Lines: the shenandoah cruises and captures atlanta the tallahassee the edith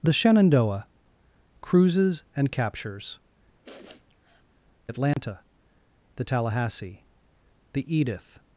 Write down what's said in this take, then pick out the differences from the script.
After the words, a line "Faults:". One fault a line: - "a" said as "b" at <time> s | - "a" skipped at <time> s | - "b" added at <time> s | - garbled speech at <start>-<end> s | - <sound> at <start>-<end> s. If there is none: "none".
the shenandoah cruises and captures atlanta the tallahassee the edith
Faults:
- sniff at 3.6-4.5 s
- dropout at 5.1-5.2 s